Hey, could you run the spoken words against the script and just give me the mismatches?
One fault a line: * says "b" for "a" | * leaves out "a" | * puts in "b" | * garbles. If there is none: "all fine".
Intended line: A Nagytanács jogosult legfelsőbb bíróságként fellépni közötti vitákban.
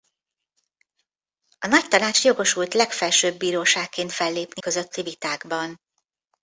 all fine